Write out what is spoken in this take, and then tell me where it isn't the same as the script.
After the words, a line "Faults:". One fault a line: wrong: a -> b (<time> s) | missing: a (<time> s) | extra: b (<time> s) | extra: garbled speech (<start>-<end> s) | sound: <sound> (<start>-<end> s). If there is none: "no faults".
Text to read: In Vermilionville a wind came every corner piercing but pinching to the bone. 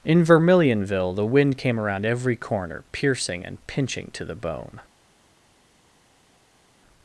In Vermilionville the wind came around every corner piercing and pinching to the bone.
Faults:
wrong: a -> the (1.1 s)
extra: around (1.8 s)
wrong: but -> and (3.4 s)